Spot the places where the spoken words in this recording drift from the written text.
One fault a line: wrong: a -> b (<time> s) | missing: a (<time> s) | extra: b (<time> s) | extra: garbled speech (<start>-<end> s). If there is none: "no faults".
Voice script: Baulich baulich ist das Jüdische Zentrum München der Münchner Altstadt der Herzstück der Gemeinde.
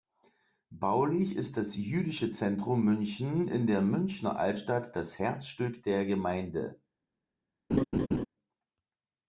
missing: baulich (1.4 s)
extra: in (3.5 s)
wrong: der -> das (5.0 s)